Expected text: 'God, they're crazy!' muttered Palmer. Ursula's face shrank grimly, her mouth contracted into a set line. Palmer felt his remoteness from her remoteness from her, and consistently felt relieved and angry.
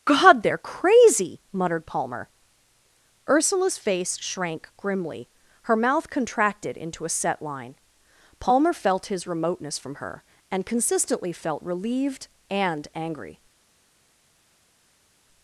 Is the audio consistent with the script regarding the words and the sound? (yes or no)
no